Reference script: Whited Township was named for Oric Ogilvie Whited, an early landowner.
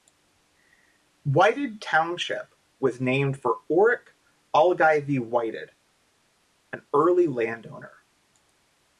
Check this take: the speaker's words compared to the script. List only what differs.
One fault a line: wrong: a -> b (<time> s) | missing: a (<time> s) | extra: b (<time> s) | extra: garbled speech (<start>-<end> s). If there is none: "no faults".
no faults